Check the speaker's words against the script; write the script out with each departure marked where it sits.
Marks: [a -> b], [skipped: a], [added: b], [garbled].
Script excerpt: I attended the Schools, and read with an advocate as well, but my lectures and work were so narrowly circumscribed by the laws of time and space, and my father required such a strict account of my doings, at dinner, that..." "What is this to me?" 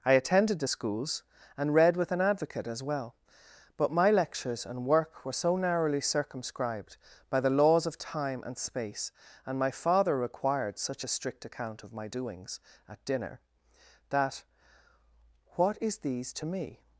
I attended the Schools, and read with an advocate as well, but my lectures and work were so narrowly circumscribed by the laws of time and space, and my father required such a strict account of my doings, at dinner, that..." "What is [this -> these] to me?"